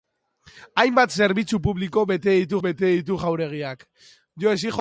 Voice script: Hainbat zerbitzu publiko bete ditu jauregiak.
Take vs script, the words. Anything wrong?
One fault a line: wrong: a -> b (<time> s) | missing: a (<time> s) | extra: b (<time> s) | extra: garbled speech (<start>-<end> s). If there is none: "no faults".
extra: bete ditu (2.6 s)